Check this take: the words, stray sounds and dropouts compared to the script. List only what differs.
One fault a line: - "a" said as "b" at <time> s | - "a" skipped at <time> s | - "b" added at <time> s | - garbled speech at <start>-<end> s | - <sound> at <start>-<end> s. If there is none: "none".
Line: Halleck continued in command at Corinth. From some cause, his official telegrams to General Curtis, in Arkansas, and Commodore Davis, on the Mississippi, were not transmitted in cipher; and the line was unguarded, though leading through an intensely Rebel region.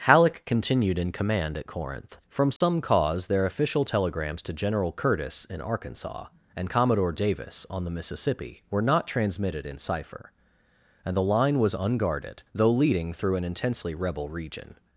- dropout at 2.6-2.6 s
- "his" said as "their" at 3.3 s